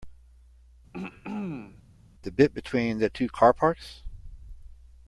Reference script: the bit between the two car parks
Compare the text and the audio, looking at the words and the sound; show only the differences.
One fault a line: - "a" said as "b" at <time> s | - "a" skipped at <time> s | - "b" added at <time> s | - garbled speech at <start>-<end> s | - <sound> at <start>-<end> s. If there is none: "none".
- throat clearing at 0.9-1.8 s